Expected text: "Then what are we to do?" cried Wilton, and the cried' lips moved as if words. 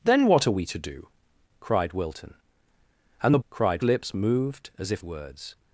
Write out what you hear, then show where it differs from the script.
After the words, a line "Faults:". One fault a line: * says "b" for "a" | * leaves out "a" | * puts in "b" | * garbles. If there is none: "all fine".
"Then what are we to do?" cried Wilton, and the cried' lips moved as if words.
Faults:
all fine